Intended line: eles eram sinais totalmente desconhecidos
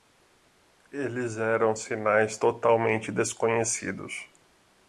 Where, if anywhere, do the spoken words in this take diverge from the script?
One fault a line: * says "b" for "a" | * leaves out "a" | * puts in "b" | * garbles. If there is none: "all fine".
all fine